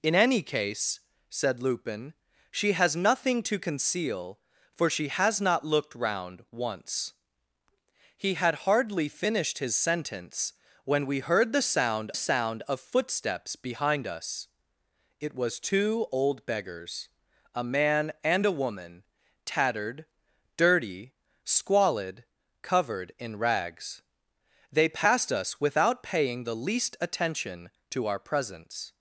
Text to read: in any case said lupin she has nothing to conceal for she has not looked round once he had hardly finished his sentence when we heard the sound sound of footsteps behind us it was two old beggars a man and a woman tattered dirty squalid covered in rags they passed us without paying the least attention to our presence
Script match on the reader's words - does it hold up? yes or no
yes